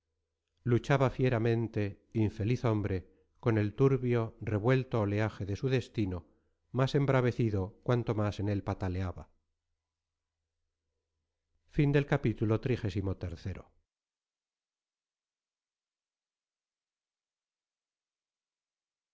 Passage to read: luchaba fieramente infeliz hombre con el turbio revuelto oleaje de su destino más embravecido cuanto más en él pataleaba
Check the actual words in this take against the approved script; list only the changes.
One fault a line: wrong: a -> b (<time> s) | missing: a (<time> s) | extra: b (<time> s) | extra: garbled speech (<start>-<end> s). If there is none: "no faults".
no faults